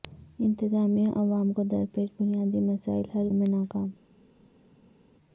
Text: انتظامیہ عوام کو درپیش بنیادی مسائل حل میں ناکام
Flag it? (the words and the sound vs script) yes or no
no